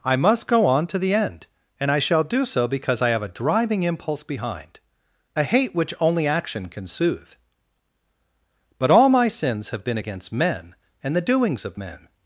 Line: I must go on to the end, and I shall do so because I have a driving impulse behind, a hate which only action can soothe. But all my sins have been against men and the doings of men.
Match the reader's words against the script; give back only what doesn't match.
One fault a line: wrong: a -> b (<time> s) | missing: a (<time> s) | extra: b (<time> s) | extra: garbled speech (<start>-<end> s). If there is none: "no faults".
no faults